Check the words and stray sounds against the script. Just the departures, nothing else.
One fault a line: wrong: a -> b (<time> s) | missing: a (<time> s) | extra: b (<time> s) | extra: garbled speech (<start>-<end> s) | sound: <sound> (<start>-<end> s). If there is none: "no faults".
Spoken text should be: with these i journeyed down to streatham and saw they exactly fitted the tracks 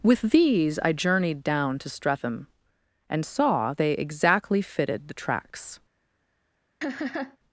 sound: laugh (6.8-7.4 s)